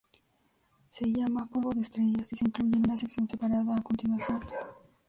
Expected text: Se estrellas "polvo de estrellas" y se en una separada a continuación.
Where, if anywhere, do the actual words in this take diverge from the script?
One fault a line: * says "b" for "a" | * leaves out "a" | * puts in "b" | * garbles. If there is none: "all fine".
* says "llama" for "estrellas"
* puts in "incluye"
* puts in "sección"